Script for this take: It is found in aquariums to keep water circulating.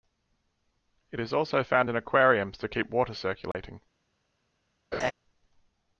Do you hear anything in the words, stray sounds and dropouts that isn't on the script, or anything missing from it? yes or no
yes